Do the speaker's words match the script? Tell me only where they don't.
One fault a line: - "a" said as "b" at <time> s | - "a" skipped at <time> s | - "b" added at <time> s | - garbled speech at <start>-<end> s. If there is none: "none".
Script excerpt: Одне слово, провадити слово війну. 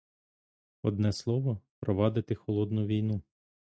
- "слово" said as "холодну" at 2.4 s